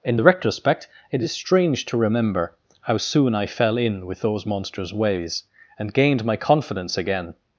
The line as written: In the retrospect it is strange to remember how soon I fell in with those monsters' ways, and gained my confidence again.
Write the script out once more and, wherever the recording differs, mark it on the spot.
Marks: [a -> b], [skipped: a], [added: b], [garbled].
In the retrospect it is strange to remember how soon I fell in with those monsters' ways, and gained my confidence again.